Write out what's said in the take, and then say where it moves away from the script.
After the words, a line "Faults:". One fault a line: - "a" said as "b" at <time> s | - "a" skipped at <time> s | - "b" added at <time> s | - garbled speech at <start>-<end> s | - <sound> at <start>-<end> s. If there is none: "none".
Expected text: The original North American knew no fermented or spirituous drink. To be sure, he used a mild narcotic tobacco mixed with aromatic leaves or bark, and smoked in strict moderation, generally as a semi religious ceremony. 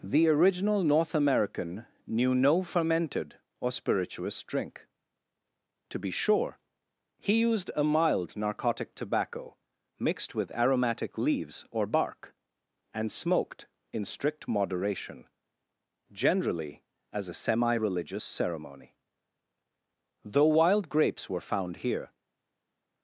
The original North American knew no fermented or spirituous drink. To be sure, he used a mild narcotic tobacco mixed with aromatic leaves or bark, and smoked in strict moderation, generally as a semi religious ceremony. Though wild grapes were found here
Faults:
- "Though wild grapes were found here" added at 20.2 s